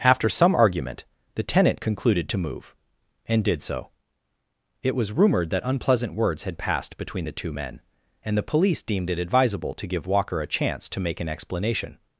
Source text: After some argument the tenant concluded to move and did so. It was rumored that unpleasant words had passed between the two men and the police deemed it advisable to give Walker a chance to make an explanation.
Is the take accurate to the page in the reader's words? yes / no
yes